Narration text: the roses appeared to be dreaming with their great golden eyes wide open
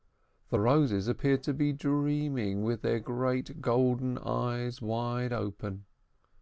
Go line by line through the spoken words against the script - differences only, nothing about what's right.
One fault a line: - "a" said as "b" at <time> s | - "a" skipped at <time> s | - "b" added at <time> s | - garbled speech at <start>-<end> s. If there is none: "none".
none